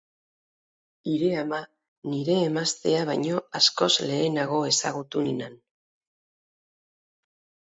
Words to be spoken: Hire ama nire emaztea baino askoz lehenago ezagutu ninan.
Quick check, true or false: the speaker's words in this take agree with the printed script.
true